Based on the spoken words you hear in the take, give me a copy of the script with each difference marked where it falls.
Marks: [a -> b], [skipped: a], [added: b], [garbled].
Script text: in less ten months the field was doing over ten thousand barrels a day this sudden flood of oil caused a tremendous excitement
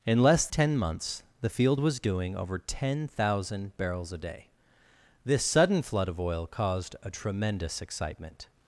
in less ten months the field was doing over ten thousand barrels a day this sudden flood of oil caused a tremendous excitement